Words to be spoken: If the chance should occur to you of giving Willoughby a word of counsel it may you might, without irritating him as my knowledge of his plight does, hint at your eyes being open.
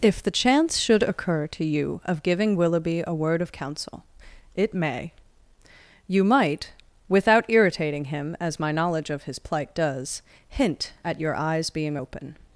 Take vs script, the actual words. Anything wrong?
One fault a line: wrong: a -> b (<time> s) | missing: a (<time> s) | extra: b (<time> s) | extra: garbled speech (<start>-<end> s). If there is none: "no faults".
no faults